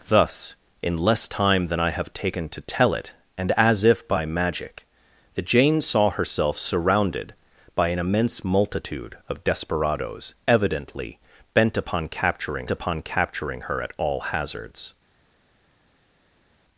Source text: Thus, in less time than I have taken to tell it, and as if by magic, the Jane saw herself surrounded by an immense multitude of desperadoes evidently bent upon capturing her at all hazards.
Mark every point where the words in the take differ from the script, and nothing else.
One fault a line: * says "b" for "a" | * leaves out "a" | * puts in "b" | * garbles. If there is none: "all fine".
* puts in "upon capturing"